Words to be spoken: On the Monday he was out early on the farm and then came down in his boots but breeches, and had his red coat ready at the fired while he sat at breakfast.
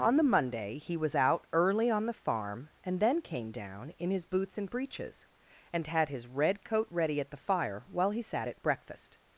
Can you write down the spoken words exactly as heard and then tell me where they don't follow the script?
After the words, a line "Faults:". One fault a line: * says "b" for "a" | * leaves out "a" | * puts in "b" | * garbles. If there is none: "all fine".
On the Monday he was out early on the farm and then came down in his boots and breeches, and had his red coat ready at the fire while he sat at breakfast.
Faults:
* says "and" for "but"
* says "fire" for "fired"